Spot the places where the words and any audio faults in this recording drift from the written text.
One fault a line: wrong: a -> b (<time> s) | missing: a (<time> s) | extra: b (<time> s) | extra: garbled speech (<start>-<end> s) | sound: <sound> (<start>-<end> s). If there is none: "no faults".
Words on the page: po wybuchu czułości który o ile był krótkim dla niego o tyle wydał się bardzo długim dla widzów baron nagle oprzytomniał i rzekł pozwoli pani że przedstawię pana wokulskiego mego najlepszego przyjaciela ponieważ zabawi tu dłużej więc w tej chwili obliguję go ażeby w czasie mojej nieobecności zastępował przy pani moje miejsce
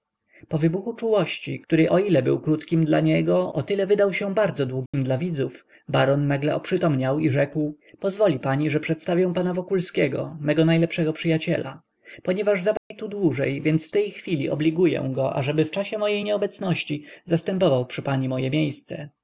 sound: dropout (4.9-4.9 s)
sound: dropout (12.8-12.9 s)